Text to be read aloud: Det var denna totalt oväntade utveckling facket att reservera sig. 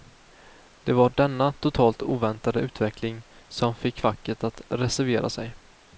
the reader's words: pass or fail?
fail